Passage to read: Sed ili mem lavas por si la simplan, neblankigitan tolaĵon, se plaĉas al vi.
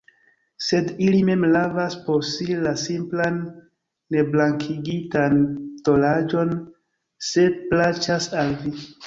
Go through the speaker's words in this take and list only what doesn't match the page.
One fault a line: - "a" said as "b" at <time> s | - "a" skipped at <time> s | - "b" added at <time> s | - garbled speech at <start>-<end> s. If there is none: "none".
none